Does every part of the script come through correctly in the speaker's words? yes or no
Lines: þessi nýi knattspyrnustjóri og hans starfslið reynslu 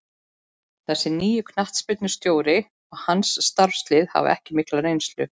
no